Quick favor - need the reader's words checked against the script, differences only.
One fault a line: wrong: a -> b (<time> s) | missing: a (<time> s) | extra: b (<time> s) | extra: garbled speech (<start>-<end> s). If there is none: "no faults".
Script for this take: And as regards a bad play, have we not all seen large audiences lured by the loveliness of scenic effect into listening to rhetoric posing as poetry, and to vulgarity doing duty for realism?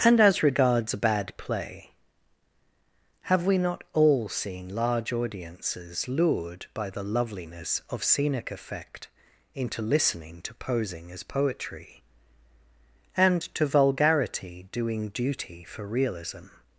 missing: rhetoric (10.6 s)